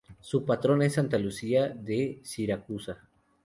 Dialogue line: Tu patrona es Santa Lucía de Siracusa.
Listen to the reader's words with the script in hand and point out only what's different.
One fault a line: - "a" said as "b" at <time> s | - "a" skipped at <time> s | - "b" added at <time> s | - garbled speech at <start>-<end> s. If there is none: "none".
- "Tu" said as "Su" at 0.2 s